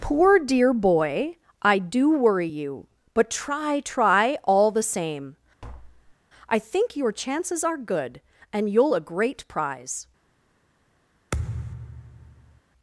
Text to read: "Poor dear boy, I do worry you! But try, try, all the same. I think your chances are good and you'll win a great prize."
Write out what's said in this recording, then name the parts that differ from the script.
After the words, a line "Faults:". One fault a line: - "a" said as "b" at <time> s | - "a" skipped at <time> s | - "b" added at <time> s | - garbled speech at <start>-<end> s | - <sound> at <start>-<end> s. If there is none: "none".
"Poor dear boy, I do worry you! But try, try, all the same. I think your chances are good and you'll a great prize."
Faults:
- tap at 5.6-6.2 s
- "win" skipped at 8.9 s
- thud at 11.3-12.6 s